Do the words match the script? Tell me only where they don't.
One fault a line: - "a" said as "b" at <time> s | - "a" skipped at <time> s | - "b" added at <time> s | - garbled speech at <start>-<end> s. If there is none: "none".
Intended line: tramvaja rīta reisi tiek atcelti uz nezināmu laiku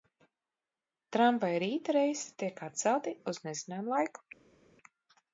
none